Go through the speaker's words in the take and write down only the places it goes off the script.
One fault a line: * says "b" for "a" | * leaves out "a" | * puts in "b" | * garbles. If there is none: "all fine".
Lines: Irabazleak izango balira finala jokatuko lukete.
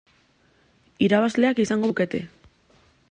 * leaves out "balira finala jokatuko"